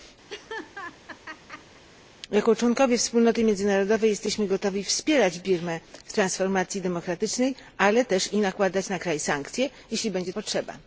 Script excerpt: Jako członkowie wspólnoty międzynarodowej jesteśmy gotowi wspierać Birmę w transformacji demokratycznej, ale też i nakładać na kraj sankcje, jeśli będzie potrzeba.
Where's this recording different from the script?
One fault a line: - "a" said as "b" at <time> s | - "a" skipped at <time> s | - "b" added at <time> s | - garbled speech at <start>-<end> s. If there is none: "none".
none